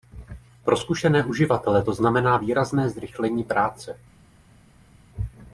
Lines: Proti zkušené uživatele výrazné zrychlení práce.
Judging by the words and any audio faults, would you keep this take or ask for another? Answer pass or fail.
fail